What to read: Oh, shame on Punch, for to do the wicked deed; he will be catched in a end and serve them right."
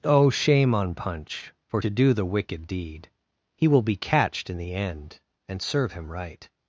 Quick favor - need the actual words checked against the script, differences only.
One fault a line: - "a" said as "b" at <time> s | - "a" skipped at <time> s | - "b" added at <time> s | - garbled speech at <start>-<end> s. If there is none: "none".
- "a" said as "the" at 4.6 s
- "them" said as "him" at 5.9 s